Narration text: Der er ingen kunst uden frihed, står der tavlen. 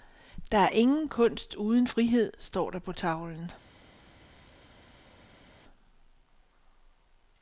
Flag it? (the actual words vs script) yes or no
yes